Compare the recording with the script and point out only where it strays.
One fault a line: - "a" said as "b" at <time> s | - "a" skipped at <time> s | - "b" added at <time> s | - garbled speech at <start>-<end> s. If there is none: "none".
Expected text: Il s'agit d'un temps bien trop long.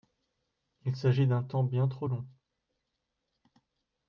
none